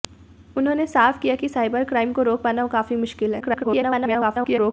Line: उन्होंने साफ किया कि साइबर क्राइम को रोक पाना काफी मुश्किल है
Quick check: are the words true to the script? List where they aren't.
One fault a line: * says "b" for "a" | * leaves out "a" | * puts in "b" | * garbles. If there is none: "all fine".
* garbles